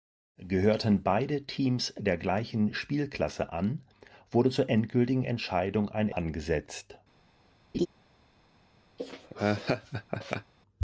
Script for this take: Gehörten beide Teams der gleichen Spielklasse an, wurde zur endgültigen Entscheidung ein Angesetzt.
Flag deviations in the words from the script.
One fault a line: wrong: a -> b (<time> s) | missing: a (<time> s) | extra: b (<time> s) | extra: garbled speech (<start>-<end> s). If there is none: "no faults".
no faults